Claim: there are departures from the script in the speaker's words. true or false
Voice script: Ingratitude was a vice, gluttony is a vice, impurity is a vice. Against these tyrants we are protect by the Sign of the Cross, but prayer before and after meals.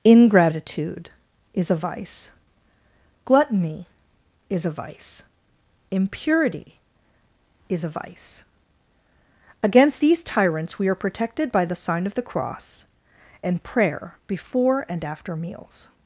true